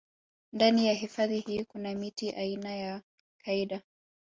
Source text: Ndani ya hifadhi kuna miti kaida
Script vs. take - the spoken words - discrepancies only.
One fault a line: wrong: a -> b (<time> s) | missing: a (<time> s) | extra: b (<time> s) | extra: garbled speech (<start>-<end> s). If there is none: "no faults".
extra: hii (1.4 s)
extra: aina ya (2.3 s)